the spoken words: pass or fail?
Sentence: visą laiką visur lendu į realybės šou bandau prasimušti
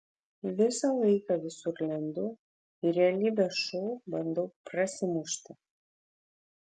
pass